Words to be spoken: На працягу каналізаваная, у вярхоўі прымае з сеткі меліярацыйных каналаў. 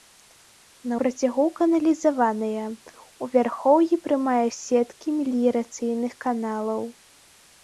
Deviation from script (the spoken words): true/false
false